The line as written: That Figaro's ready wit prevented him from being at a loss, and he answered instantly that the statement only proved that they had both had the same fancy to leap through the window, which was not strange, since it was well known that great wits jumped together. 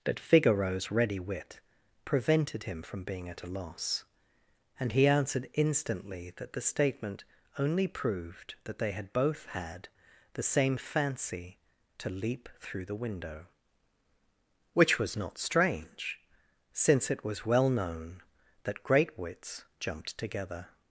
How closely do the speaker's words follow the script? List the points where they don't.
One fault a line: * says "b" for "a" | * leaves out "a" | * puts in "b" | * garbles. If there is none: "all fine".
all fine